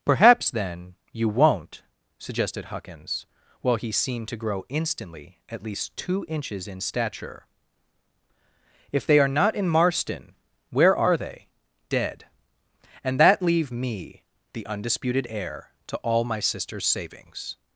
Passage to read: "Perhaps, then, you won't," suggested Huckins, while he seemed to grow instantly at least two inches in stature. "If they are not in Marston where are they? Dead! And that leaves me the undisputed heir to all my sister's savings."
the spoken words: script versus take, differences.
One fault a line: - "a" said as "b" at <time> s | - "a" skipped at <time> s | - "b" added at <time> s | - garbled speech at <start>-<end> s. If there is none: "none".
- "leaves" said as "leave" at 13.4 s